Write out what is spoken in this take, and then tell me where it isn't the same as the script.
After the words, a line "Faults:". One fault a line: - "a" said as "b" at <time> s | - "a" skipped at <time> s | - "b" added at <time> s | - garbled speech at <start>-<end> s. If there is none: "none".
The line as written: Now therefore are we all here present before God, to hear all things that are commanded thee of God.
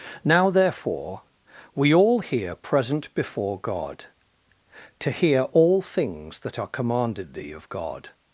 Now therefore we all here present before God, to hear all things that are commanded thee of God.
Faults:
- "are" skipped at 1.2 s